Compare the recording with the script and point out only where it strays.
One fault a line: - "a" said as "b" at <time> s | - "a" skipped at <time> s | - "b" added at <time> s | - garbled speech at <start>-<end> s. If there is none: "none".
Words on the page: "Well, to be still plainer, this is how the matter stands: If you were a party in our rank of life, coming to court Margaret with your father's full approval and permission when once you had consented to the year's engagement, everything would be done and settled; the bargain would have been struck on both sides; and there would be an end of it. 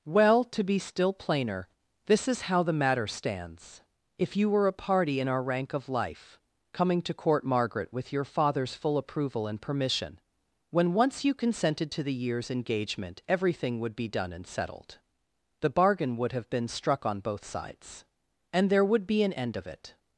- "had" skipped at 11.3 s